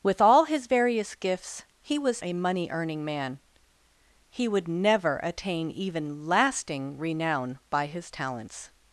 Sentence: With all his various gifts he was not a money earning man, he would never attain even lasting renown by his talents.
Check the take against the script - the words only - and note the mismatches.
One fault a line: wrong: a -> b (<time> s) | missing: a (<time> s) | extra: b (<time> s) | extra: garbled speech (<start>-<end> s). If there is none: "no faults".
missing: not (2.2 s)